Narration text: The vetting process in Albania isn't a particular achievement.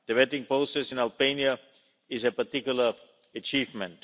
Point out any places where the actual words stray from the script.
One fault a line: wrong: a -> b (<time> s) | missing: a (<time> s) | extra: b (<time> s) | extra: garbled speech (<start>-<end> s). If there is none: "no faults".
wrong: isn't -> is (2.1 s)